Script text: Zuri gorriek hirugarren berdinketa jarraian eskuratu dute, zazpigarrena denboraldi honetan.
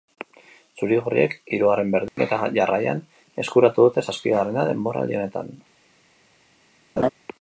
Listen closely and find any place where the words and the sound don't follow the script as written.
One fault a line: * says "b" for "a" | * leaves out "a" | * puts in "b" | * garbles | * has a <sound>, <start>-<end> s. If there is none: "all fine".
* has a dropout, 2.1-2.2 s
* has a laugh, 7.0-7.1 s